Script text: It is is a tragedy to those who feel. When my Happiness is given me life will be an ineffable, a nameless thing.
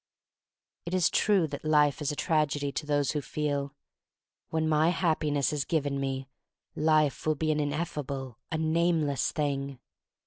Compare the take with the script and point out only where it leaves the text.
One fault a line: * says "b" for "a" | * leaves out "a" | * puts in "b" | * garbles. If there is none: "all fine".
* puts in "true that life"